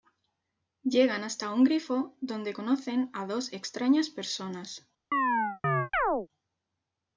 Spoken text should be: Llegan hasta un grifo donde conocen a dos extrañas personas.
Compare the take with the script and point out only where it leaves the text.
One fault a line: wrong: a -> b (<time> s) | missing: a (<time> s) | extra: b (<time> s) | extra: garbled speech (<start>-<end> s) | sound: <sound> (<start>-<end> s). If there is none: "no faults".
sound: chirp (5.1-6.3 s)